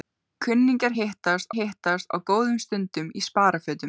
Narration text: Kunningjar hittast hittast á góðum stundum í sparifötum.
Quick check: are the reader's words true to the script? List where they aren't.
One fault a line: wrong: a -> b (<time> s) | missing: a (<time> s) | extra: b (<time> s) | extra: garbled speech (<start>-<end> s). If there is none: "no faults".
no faults